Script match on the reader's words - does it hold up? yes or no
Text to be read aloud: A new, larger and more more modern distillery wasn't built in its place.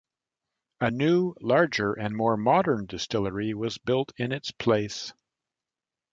no